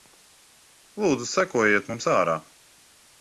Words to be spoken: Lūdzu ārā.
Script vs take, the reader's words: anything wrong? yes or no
yes